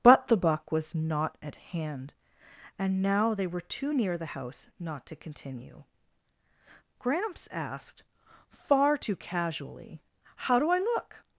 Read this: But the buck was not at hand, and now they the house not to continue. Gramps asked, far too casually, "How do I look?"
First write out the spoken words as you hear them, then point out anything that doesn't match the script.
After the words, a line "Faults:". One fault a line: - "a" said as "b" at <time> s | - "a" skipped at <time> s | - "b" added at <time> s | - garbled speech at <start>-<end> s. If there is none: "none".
But the buck was not at hand, and now they were too near the house not to continue. Gramps asked, far too casually, "How do I look?"
Faults:
- "were too near" added at 3.5 s